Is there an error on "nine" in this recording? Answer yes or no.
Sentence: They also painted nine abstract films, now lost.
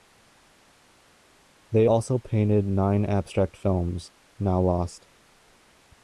no